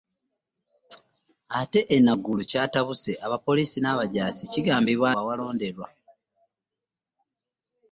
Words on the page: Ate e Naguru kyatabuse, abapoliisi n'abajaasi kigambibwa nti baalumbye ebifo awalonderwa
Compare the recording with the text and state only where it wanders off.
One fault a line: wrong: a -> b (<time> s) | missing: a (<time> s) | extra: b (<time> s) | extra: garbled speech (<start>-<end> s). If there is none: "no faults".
missing: nti baalumbye ebifo (5.1 s)